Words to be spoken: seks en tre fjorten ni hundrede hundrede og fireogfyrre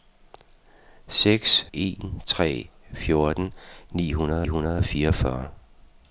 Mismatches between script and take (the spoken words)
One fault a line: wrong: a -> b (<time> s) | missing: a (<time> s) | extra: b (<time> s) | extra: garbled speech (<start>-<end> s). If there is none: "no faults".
no faults